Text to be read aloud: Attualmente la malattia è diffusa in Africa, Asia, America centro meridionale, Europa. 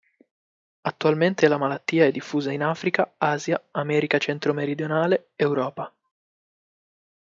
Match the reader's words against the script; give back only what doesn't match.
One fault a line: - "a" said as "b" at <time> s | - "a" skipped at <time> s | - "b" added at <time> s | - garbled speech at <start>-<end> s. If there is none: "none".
none